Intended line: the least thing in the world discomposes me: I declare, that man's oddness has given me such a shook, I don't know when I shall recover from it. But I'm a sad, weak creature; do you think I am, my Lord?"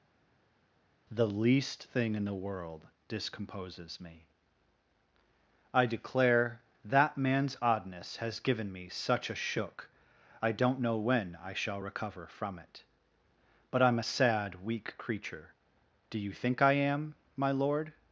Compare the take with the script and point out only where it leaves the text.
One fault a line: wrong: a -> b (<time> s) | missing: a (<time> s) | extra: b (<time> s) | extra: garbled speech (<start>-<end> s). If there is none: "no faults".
no faults